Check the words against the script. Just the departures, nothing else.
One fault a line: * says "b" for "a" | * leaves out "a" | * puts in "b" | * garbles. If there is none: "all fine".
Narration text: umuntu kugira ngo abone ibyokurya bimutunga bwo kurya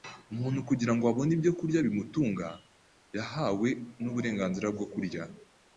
* puts in "yahawe n'uburenganzira"